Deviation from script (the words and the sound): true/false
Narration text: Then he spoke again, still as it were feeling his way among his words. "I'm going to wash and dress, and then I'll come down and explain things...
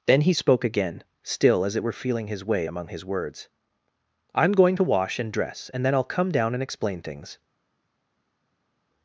false